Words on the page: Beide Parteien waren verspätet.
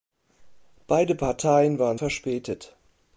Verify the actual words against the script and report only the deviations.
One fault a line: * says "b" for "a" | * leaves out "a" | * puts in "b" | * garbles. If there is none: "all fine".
all fine